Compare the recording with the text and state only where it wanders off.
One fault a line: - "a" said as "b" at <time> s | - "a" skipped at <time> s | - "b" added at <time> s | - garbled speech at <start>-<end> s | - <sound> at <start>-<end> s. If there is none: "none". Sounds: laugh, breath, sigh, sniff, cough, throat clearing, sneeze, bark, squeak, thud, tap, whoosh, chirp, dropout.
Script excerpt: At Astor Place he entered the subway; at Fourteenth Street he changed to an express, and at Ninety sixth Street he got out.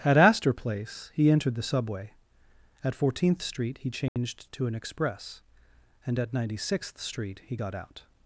- dropout at 4.1-4.2 s